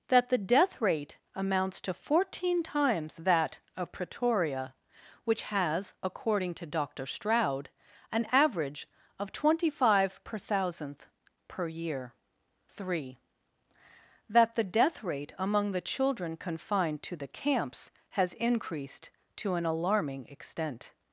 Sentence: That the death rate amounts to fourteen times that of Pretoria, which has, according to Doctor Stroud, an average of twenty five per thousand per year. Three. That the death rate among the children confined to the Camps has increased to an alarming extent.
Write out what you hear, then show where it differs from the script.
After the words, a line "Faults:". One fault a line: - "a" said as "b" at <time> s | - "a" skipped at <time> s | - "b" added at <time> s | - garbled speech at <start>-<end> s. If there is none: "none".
That the death rate amounts to fourteen times that of Pretoria, which has, according to Doctor Stroud, an average of twenty five per thousandth per year. Three. That the death rate among the children confined to the Camps has increased to an alarming extent.
Faults:
- "thousand" said as "thousandth" at 10.4 s